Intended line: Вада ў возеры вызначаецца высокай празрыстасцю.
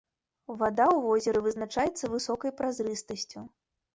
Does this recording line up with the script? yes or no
yes